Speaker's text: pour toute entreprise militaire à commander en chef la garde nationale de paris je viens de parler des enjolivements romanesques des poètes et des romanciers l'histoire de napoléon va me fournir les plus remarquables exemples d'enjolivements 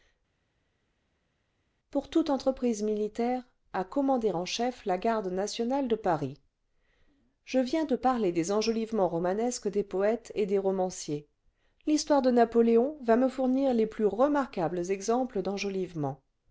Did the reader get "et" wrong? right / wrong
right